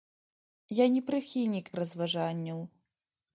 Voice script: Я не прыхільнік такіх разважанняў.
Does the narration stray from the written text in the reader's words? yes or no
yes